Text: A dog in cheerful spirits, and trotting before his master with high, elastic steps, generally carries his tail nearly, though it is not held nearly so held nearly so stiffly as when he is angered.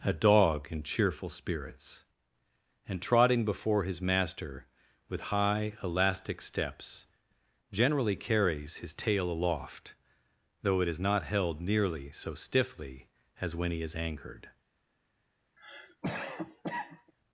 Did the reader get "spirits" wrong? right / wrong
right